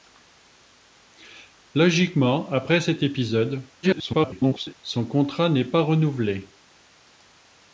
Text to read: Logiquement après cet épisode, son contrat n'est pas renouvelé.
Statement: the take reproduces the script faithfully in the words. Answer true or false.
false